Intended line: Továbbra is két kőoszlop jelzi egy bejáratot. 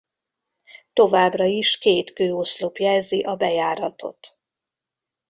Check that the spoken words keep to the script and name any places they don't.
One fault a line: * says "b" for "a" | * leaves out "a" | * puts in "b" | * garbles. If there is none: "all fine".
* says "a" for "egy"